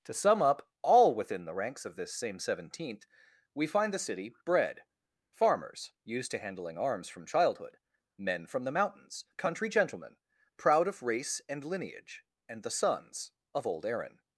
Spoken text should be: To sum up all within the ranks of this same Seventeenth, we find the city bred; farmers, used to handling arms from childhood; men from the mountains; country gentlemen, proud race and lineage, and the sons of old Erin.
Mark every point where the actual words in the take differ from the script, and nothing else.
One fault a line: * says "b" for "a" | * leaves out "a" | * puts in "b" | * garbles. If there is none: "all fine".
* puts in "of"